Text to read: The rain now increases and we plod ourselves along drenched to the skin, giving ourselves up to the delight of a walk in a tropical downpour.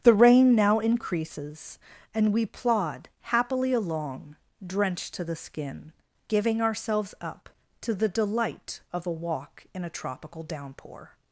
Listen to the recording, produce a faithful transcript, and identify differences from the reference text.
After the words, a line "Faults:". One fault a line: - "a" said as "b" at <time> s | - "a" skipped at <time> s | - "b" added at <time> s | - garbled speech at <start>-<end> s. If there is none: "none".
The rain now increases and we plod happily along drenched to the skin, giving ourselves up to the delight of a walk in a tropical downpour.
Faults:
- "ourselves" said as "happily" at 3.2 s